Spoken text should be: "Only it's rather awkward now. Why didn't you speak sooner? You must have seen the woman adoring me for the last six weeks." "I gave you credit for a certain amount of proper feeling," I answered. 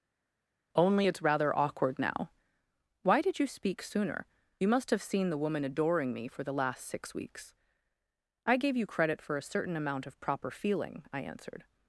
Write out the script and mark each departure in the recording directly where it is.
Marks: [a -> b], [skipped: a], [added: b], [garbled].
"Only it's rather awkward now. Why [didn't -> did] you speak sooner? You must have seen the woman adoring me for the last six weeks." "I gave you credit for a certain amount of proper feeling," I answered.